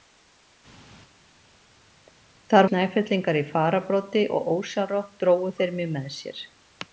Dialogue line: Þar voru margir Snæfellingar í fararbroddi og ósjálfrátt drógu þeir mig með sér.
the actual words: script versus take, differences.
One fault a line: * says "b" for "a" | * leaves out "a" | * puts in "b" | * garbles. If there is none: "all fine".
* leaves out "voru margir"